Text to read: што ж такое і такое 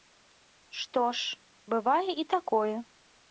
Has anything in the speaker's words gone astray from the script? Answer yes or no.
yes